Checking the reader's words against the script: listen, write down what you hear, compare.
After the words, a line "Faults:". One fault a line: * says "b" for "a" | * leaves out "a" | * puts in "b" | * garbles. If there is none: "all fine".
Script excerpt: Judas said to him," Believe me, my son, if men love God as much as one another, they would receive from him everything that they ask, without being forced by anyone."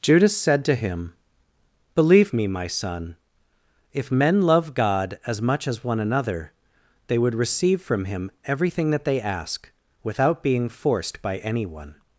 Judas said to him," Believe me, my son, if men love God as much as one another, they would receive from him everything that they ask, without being forced by anyone."
Faults:
all fine